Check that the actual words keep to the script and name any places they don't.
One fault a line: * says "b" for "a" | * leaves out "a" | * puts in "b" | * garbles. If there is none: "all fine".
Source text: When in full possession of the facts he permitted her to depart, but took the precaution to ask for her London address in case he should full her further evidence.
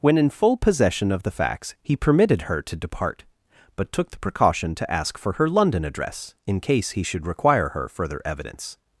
* says "require" for "full"